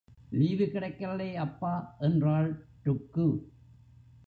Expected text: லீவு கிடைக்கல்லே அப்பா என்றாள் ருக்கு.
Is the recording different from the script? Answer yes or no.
no